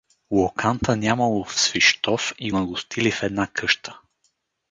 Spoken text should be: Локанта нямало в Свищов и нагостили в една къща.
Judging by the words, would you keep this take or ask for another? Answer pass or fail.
pass